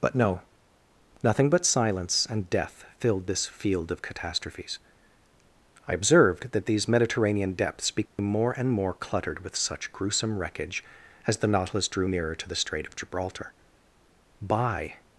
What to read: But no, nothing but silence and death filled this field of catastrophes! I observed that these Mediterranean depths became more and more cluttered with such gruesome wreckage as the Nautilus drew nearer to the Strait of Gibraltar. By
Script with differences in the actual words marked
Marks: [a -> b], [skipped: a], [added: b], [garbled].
But no, nothing but silence and death filled this field of catastrophes! I observed that these Mediterranean depths became more and more cluttered with such gruesome wreckage as the Nautilus drew nearer to the Strait of Gibraltar. By